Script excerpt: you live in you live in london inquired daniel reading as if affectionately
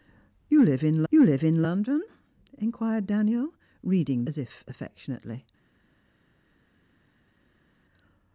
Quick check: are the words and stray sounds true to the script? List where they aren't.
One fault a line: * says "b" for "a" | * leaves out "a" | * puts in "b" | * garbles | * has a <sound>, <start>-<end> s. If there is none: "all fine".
all fine